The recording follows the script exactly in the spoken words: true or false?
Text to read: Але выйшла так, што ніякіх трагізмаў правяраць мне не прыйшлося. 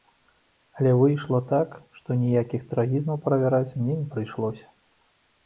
true